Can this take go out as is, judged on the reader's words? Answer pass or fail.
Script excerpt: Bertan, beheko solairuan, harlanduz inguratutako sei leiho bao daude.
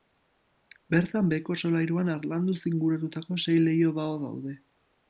pass